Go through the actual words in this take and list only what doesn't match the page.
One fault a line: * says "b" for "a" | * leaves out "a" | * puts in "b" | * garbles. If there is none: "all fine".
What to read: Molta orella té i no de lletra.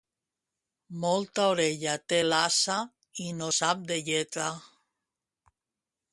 * puts in "l'ase"
* puts in "sap"